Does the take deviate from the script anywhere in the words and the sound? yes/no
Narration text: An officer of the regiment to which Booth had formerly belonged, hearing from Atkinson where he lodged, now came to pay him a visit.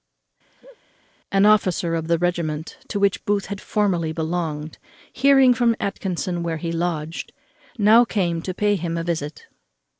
yes